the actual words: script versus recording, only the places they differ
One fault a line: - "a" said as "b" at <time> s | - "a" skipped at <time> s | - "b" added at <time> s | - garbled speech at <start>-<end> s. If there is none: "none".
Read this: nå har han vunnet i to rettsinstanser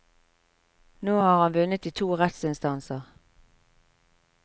none